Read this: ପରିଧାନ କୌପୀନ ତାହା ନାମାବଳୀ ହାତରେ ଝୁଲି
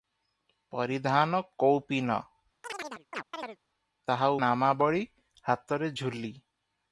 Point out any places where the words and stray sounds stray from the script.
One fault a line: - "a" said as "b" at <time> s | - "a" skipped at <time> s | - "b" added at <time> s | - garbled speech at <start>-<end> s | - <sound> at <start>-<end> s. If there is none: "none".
- chirp at 2.6-3.6 s